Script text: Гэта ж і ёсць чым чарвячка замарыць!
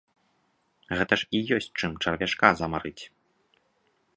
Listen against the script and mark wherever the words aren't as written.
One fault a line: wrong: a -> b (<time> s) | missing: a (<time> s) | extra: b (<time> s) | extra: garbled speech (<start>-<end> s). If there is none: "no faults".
no faults